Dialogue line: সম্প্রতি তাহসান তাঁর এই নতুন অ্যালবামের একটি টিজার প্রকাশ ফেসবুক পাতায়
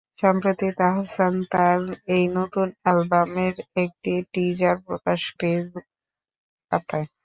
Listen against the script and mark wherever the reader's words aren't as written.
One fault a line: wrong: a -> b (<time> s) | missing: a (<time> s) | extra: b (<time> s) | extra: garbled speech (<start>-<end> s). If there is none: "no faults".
no faults